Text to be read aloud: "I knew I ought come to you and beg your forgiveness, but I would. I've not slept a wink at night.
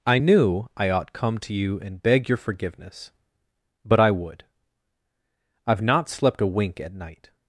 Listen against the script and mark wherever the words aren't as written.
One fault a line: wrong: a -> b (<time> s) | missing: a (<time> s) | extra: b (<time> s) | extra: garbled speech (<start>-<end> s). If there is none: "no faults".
no faults